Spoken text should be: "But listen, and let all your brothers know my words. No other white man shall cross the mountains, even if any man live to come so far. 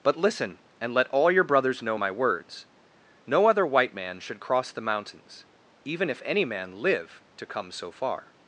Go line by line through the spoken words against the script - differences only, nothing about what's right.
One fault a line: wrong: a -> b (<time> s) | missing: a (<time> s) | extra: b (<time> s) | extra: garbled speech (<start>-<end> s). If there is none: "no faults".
wrong: shall -> should (4.2 s)